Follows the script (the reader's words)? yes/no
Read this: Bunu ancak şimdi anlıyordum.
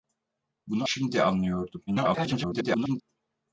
no